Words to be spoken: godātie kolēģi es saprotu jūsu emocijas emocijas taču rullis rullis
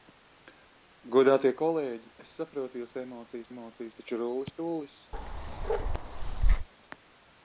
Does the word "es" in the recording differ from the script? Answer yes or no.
no